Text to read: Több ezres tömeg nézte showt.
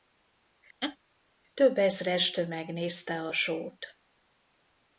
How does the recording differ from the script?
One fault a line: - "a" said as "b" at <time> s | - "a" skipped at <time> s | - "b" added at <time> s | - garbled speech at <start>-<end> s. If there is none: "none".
- "a" added at 3.2 s